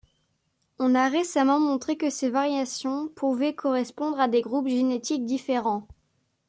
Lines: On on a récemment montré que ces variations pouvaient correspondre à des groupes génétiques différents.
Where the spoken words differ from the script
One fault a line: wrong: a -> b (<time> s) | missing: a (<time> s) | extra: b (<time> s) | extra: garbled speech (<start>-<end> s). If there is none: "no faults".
missing: on (0.9 s)